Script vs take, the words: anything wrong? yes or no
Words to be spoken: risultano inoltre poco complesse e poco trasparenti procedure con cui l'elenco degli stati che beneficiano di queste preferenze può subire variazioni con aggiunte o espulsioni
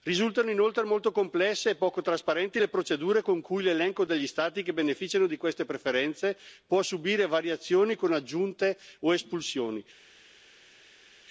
yes